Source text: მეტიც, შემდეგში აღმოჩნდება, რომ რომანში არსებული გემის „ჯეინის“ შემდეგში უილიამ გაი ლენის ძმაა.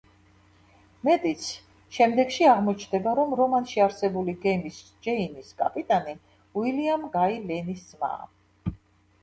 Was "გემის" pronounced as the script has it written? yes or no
yes